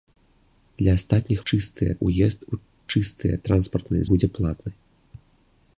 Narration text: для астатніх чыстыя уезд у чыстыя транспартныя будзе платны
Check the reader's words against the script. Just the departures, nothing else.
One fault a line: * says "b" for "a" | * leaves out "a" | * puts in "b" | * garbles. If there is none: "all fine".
all fine